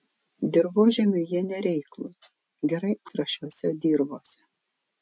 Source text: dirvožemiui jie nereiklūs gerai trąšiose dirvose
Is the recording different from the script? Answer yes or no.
no